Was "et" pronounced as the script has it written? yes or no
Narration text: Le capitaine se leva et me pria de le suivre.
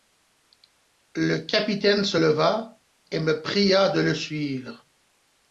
yes